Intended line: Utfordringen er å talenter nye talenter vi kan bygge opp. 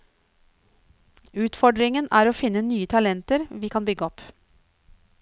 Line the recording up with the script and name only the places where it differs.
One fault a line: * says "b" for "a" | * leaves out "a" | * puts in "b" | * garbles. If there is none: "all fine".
* says "finne" for "talenter"